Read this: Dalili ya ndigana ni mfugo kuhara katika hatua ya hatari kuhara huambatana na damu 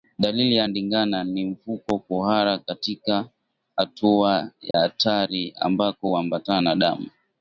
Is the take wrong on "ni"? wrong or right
right